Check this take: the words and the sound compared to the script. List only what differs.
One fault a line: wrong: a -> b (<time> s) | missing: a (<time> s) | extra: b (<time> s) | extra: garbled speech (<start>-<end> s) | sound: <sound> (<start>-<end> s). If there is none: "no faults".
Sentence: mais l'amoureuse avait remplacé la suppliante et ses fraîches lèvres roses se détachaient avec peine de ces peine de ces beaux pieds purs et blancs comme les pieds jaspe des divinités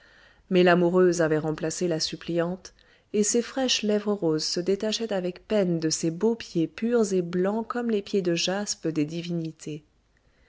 missing: peine de ces (6.1 s)
extra: de (8.2 s)